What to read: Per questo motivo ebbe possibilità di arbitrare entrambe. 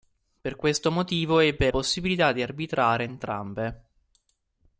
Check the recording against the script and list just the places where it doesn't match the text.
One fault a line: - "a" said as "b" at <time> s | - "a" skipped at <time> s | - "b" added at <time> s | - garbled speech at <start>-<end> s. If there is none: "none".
none